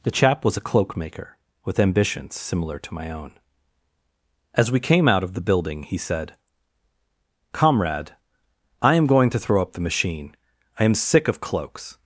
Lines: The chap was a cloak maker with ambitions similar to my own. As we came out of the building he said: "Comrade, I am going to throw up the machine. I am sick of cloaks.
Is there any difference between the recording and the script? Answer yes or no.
no